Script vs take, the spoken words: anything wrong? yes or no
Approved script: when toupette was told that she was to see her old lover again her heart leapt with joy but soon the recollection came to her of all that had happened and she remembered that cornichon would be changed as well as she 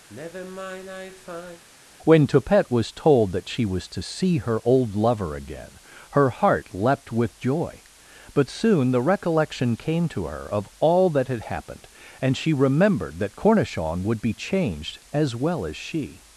no